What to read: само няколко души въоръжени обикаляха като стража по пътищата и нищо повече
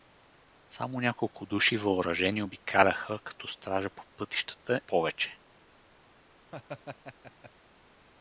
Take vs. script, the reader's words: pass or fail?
fail